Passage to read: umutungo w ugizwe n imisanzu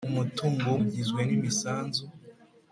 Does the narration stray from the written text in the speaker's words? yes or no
no